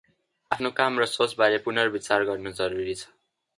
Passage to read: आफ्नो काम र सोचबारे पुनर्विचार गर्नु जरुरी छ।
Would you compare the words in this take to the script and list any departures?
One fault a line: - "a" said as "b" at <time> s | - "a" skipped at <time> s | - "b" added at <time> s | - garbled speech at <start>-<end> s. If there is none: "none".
none